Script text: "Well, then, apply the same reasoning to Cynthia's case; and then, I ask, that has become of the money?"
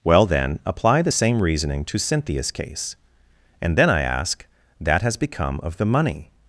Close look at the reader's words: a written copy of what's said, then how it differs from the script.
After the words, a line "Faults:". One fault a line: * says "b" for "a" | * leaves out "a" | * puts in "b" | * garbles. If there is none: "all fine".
"Well, then, apply the same reasoning to Cynthia's case; and then, I ask, that has become of the money?"
Faults:
all fine